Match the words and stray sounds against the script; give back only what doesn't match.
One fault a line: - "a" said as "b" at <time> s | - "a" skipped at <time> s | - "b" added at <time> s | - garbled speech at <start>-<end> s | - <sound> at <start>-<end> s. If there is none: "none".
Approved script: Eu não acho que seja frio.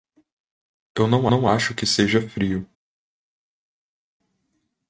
- "não" added at 1.3 s